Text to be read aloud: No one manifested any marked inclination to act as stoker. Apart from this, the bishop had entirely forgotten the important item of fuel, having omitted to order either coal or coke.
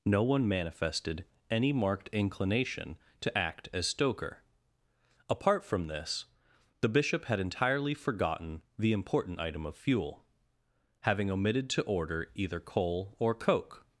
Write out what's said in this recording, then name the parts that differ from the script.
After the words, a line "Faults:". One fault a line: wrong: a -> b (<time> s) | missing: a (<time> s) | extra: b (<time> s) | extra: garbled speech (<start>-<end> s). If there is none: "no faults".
No one manifested any marked inclination to act as stoker. Apart from this, the bishop had entirely forgotten the important item of fuel, having omitted to order either coal or coke.
Faults:
no faults